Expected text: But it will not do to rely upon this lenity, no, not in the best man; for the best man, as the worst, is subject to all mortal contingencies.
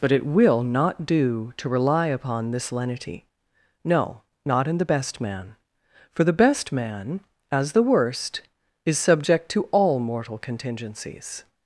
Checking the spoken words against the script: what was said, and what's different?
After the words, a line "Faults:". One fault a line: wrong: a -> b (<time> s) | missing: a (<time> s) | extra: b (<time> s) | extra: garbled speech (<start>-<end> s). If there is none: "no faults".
But it will not do to rely upon this lenity, no, not in the best man; for the best man, as the worst, is subject to all mortal contingencies.
Faults:
no faults